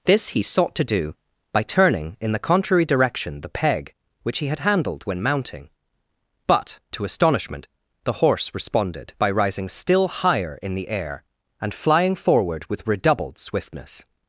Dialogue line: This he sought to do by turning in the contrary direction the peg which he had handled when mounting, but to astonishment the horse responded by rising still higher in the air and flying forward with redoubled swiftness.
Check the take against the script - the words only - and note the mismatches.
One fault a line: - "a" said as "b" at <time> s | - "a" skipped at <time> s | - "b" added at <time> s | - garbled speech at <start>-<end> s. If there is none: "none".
none